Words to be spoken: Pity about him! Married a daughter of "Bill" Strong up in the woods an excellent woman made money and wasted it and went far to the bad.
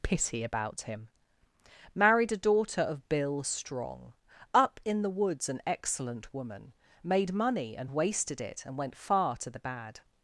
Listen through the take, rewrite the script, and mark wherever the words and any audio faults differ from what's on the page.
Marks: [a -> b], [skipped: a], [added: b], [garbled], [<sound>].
Pity about him! Married a daughter of "Bill" Strong up in the woods an excellent woman made money and wasted it and went far to the bad.